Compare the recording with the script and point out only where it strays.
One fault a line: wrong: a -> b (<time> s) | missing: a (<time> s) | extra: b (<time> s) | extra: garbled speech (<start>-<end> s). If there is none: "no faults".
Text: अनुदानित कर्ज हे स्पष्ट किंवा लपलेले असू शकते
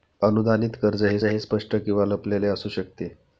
extra: हे (1.2 s)